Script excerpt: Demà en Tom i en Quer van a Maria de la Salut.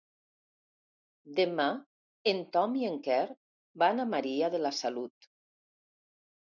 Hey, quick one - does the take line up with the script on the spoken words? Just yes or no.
yes